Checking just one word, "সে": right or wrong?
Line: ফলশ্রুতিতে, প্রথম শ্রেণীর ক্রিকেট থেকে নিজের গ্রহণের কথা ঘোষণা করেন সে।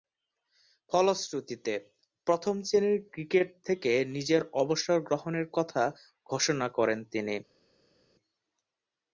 wrong